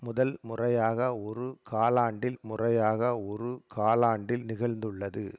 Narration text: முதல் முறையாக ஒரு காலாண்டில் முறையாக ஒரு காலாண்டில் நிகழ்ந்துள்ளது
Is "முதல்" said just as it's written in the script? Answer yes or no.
yes